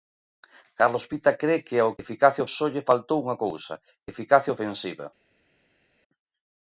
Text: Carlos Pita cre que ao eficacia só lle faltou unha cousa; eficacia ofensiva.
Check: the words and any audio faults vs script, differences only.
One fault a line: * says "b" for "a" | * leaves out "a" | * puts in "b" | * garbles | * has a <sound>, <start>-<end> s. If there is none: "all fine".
all fine